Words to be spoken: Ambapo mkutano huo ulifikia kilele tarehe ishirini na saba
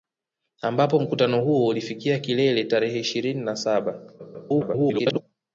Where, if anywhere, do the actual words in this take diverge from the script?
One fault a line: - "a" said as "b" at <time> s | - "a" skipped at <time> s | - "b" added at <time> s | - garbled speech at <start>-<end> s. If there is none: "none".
- garbled speech at 4.2-5.2 s